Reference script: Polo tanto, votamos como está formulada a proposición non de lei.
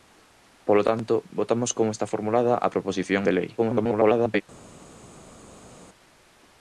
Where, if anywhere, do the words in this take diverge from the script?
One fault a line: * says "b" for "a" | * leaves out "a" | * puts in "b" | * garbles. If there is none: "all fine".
* leaves out "non"
* garbles